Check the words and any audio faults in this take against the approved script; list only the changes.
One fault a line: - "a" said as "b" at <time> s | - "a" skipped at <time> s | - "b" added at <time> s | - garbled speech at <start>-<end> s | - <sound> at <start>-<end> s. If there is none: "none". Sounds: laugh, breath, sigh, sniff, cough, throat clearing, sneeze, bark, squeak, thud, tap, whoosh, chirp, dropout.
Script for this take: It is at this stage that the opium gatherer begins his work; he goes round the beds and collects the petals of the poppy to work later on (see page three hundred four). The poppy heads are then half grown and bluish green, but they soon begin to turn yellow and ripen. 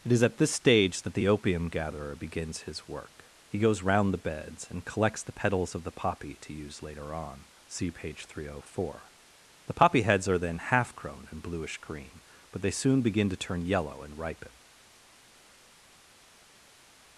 - "work" said as "use" at 6.5 s